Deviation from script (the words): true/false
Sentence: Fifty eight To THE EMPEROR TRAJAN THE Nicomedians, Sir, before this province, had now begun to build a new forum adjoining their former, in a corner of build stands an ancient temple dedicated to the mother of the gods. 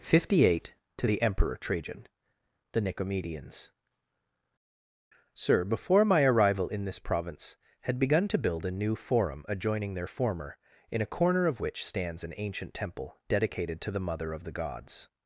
true